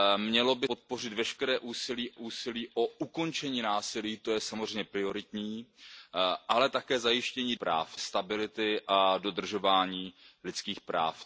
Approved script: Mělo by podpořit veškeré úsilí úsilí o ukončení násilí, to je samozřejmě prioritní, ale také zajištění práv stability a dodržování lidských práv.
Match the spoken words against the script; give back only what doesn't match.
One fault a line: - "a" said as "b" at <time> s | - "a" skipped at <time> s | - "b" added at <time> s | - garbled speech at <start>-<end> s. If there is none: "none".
none